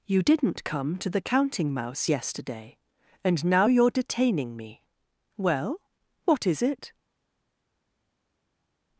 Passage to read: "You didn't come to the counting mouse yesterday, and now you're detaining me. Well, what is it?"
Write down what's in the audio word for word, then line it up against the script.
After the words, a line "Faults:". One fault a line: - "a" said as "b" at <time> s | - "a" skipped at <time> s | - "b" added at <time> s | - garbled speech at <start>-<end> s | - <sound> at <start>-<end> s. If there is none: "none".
"You didn't come to the counting mouse yesterday, and now you're detaining me. Well, what is it?"
Faults:
none